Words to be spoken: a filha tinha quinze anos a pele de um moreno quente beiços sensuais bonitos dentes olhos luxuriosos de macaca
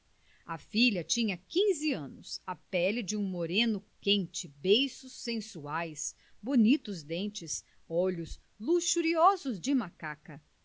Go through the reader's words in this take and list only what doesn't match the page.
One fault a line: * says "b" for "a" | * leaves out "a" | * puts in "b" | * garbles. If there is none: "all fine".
all fine